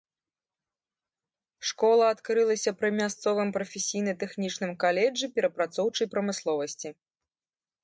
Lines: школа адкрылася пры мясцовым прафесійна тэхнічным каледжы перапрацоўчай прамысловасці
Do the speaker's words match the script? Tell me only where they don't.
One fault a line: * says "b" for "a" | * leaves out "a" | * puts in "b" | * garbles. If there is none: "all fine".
all fine